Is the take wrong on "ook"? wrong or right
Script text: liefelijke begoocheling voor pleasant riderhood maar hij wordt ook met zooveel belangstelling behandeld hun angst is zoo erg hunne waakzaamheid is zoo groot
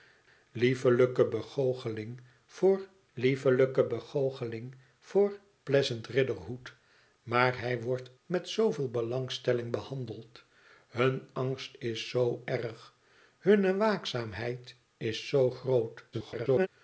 wrong